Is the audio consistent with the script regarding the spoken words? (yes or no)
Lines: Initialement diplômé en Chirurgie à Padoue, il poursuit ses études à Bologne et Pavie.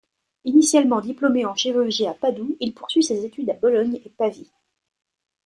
yes